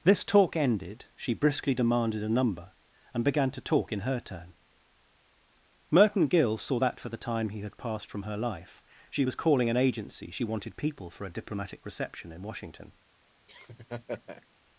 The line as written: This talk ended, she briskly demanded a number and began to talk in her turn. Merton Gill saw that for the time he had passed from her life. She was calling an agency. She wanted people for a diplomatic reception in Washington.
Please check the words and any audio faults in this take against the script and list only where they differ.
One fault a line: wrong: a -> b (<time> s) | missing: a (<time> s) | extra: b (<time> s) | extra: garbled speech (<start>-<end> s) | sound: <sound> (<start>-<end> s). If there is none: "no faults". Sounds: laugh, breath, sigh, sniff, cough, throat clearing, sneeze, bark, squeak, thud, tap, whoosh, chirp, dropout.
sound: laugh (13.5-14.5 s)